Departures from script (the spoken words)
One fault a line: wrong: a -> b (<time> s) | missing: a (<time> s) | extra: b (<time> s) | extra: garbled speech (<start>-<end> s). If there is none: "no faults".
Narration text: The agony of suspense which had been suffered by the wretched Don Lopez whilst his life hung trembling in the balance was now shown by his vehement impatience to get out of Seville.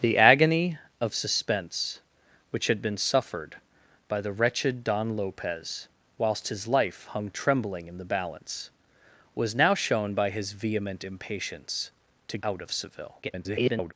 missing: get (12.4 s)
extra: garbled speech (13.2-13.9 s)